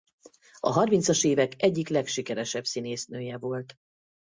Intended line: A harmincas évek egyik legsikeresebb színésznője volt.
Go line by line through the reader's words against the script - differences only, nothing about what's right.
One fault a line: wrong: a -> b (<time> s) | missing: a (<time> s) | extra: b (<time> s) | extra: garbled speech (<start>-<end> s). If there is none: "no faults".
no faults